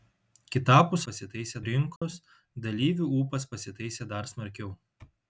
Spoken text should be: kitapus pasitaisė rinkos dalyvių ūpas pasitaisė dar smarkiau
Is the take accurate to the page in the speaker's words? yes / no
yes